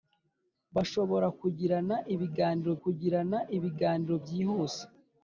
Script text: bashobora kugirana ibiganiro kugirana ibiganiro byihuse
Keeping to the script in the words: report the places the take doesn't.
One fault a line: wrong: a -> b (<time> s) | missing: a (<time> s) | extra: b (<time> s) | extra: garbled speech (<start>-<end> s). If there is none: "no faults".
no faults